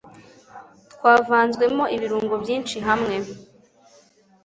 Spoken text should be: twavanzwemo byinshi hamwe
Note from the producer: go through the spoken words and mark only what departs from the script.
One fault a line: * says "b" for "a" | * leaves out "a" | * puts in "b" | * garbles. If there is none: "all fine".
* puts in "ibirungo"